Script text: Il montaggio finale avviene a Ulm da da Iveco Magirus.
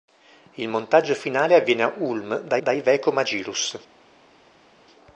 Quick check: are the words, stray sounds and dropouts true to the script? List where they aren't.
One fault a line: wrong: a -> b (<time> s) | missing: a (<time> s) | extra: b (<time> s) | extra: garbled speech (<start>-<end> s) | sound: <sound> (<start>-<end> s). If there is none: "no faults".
no faults